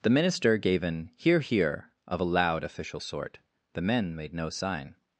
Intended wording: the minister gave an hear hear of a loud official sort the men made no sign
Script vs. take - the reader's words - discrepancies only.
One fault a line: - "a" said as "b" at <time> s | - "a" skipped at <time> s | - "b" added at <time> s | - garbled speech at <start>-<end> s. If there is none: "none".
none